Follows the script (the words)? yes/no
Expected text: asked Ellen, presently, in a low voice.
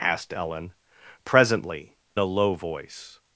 no